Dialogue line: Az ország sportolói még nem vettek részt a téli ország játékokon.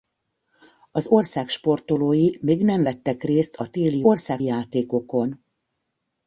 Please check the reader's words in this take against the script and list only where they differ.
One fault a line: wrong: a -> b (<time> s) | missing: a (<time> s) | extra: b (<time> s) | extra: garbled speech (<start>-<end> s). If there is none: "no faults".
no faults